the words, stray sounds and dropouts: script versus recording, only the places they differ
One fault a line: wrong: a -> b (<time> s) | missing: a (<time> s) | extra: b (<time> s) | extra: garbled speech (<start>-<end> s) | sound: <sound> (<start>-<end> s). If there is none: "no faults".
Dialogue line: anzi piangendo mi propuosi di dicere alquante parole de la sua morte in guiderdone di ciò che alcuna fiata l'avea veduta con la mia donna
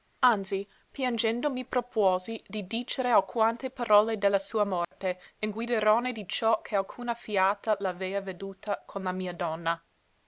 sound: dropout (4.8-4.9 s)